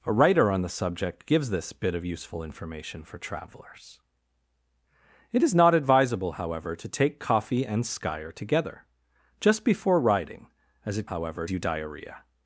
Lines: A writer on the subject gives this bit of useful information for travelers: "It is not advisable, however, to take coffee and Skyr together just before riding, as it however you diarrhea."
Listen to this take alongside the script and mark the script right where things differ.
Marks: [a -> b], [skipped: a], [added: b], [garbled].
A writer on the subject gives this bit of useful information for travelers: "It is not advisable, however, to take coffee and Skyr together just before riding, as it however you diarrhea."